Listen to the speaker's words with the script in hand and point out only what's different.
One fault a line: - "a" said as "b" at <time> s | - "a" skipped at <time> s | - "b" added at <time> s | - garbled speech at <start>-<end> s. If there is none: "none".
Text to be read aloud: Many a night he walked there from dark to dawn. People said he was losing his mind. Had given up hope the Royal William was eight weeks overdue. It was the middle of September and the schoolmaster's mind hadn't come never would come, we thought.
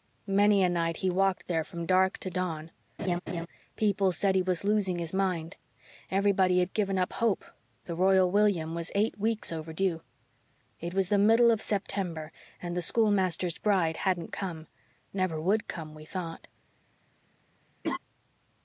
- "Everybody" added at 6.1 s
- "mind" said as "bride" at 13.6 s